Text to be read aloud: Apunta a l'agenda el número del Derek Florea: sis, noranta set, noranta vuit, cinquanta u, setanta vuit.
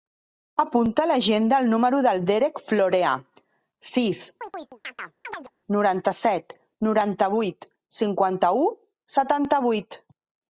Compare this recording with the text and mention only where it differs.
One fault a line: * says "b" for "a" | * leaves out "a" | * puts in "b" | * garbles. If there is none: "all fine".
all fine